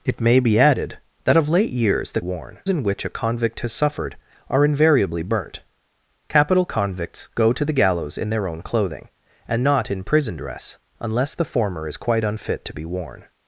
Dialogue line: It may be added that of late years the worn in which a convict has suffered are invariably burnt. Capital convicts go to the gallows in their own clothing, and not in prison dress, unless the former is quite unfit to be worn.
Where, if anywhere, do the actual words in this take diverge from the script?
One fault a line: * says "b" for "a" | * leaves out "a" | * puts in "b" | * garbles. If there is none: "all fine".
all fine